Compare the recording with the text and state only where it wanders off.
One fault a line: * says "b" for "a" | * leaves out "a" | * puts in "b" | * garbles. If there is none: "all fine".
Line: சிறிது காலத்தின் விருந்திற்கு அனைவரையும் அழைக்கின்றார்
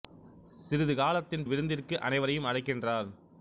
all fine